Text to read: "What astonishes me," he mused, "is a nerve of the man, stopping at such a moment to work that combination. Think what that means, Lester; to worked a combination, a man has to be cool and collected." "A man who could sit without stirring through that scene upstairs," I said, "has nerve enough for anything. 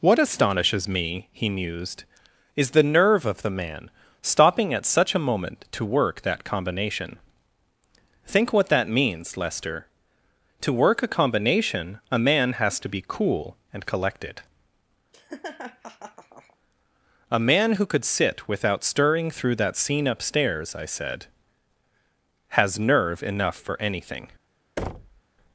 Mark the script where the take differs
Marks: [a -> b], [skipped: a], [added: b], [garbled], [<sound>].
"What astonishes me," he mused, "is [a -> the] nerve of the man, stopping at such a moment to work that combination. Think what that means, Lester; to [worked -> work] a combination, a man has to be cool and collected." [laugh] "A man who could sit without stirring through that scene upstairs," I said, "has nerve enough for anything. [thud]